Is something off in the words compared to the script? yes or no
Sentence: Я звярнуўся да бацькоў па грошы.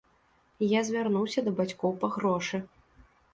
no